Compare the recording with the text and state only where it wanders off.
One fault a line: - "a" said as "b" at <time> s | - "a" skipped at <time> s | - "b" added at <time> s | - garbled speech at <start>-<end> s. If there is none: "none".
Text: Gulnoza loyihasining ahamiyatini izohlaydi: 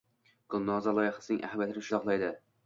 none